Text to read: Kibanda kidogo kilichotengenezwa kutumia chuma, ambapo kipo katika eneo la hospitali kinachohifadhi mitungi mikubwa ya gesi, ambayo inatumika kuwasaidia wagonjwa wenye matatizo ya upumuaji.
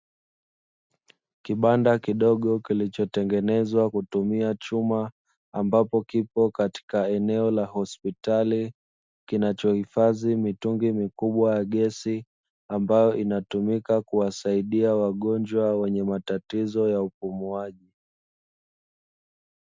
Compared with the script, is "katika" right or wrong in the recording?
right